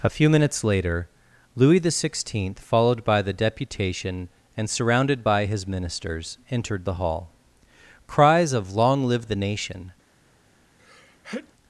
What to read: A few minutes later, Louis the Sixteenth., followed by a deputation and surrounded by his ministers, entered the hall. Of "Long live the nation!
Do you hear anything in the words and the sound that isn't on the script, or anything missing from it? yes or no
yes